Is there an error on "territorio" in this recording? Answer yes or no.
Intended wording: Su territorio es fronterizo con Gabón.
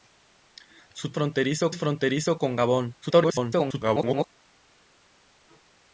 yes